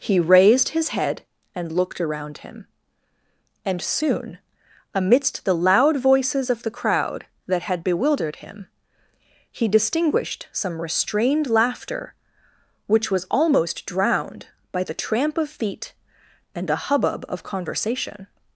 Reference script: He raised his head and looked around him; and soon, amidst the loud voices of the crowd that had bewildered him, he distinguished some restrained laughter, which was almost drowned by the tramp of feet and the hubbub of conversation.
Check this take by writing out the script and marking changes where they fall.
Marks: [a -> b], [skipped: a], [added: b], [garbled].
He raised his head and looked around him; and soon, amidst the loud voices of the crowd that had bewildered him, he distinguished some restrained laughter, which was almost drowned by the tramp of feet and [the -> a] hubbub of conversation.